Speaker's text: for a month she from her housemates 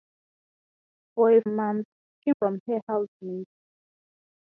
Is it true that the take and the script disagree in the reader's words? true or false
false